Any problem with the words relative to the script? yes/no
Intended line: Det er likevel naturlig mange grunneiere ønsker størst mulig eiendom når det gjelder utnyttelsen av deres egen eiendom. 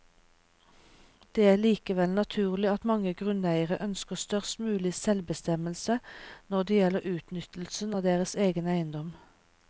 yes